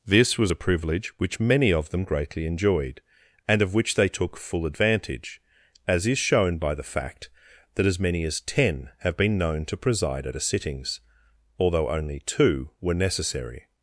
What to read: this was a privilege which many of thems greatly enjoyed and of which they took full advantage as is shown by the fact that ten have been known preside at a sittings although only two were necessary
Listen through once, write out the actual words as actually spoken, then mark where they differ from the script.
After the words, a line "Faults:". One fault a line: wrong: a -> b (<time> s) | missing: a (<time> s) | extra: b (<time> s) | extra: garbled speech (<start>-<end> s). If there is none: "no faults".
this was a privilege which many of them greatly enjoyed and of which they took full advantage as is shown by the fact that as many as ten have been known to preside at a sittings although only two were necessary
Faults:
wrong: thems -> them (1.9 s)
extra: as many as (7.9 s)
extra: to (9.6 s)